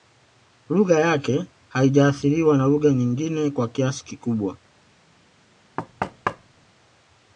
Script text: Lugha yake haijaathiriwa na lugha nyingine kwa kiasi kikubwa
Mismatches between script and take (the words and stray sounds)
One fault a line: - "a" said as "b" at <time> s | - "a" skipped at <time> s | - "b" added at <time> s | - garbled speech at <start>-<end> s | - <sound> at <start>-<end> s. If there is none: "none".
- thud at 5.8-6.7 s